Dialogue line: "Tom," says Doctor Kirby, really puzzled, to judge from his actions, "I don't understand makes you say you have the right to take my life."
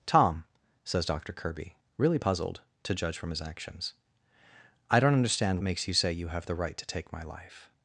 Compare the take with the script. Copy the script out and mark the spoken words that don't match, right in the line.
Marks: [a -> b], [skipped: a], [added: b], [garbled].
"Tom," says Doctor Kirby, really puzzled, to judge from his actions, "I don't understand makes you say you have the right to take my life."